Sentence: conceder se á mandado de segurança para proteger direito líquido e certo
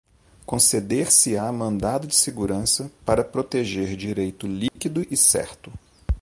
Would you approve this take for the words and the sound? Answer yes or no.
no